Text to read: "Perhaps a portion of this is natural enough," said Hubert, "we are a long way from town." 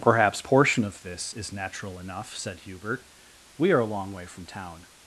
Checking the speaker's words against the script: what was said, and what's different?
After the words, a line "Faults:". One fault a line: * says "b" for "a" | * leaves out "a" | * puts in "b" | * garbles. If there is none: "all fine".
"Perhaps portion of this is natural enough," said Hubert, "we are a long way from town."
Faults:
* leaves out "a"